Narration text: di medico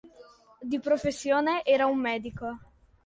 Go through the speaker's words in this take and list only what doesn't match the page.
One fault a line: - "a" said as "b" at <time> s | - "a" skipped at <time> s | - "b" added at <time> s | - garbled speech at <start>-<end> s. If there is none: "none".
- "professione era un" added at 0.8 s